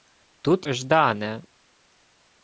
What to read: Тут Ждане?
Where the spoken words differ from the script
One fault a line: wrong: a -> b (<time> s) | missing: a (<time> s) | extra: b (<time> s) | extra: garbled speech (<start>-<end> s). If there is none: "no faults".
no faults